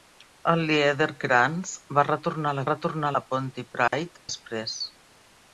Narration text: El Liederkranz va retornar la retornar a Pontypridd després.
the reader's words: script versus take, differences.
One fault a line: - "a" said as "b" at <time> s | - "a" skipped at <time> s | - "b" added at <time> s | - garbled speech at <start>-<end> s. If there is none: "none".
none